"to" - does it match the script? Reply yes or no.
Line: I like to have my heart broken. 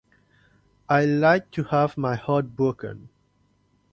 yes